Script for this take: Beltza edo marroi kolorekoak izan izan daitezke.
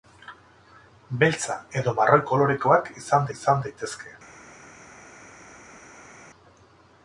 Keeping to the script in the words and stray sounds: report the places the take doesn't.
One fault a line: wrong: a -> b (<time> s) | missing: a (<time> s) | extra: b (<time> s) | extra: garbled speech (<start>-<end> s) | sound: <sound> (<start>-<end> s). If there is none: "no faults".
no faults